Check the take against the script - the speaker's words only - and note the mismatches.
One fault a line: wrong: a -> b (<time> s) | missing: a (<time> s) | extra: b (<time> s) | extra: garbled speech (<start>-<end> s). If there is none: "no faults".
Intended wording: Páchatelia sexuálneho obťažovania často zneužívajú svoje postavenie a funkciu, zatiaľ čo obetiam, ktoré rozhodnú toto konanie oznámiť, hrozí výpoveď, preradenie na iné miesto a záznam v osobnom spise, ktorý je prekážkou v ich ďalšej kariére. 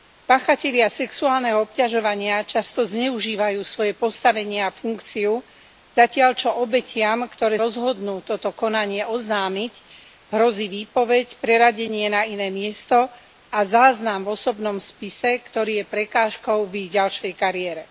no faults